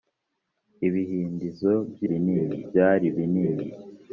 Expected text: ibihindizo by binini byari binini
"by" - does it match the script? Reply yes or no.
yes